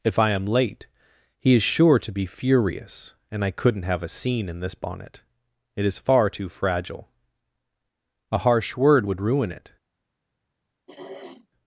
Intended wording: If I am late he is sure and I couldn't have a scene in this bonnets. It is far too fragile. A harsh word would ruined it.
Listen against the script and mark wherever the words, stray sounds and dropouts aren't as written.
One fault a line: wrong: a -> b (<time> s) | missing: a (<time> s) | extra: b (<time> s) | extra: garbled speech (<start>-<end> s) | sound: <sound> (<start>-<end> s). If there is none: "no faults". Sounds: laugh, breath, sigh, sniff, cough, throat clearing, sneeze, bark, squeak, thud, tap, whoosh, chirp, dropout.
extra: to be furious (2.0 s)
wrong: bonnets -> bonnet (4.8 s)
wrong: ruined -> ruin (9.2 s)
sound: throat clearing (10.9-11.5 s)